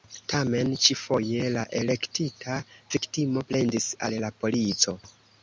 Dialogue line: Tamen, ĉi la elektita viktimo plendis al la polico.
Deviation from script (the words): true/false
true